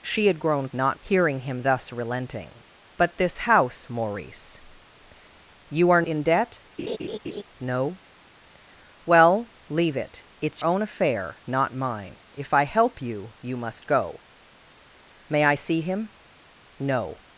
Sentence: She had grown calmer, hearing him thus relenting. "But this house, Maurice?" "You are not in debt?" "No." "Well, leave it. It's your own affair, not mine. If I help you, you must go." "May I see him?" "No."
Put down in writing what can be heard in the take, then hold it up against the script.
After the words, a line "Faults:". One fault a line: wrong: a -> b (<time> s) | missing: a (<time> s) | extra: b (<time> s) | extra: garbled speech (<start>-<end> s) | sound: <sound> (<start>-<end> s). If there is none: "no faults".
She had grown not, hearing him thus relenting. "But this house, Maurice?" "You are in debt?" "No." "Well, leave it. It's own affair, not mine. If I help you, you must go." "May I see him?" "No."
Faults:
wrong: calmer -> not (0.7 s)
missing: not (6.0 s)
sound: laugh (6.8-7.4 s)
missing: your (10.6 s)